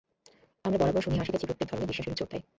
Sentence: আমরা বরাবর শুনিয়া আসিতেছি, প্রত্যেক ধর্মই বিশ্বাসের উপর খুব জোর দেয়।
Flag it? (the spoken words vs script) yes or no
yes